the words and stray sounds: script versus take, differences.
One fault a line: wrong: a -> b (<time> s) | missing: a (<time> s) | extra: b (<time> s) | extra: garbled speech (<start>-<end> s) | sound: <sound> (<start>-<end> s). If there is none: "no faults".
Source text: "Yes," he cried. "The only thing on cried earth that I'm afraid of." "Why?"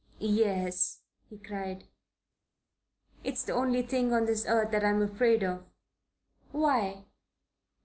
extra: It's (3.2 s)
wrong: cried -> this (4.2 s)